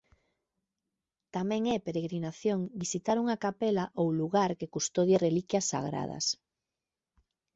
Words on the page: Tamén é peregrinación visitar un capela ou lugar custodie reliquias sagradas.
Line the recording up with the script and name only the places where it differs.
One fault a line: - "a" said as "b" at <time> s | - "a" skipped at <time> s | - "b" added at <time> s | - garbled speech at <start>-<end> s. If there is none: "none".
- "un" said as "unha" at 3.2 s
- "que" added at 4.6 s